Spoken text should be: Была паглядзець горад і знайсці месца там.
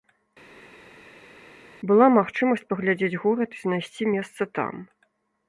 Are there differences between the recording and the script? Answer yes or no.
yes